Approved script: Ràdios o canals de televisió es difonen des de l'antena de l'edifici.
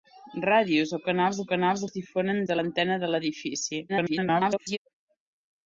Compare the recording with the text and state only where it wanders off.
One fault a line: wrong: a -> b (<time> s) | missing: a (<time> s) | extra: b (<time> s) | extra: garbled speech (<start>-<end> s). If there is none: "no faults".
wrong: televisió -> canals (1.5 s)
missing: des (2.4 s)
extra: garbled speech (3.9-4.8 s)